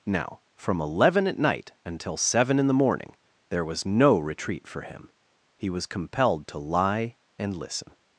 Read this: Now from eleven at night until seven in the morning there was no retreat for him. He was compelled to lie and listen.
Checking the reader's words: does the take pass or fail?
pass